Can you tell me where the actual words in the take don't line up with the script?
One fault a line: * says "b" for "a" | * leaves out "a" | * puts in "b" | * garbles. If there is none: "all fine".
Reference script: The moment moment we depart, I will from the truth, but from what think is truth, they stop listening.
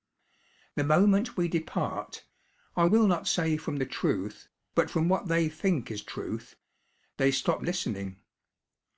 * leaves out "moment"
* puts in "not say"
* puts in "they"